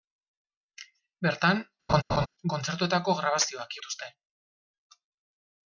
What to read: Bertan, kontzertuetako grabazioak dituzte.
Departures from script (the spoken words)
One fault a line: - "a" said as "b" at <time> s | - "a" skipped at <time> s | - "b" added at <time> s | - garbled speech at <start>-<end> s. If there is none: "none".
none